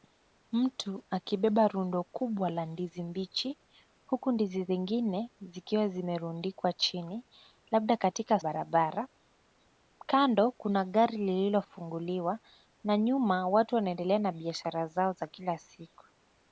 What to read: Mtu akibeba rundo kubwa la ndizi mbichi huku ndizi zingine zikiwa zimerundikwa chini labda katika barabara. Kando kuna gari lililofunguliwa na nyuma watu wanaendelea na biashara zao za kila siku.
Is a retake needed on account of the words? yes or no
no